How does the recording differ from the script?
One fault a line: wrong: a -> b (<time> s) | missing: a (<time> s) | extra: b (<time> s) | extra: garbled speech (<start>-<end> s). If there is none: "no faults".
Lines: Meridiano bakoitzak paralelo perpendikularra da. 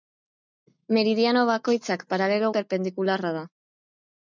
no faults